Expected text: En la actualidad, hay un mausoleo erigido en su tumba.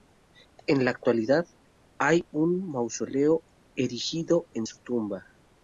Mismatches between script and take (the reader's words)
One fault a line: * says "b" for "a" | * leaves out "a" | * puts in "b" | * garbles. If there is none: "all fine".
all fine